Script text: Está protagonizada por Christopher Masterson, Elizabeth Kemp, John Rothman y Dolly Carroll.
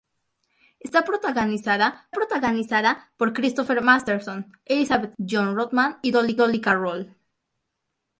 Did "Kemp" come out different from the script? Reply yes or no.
yes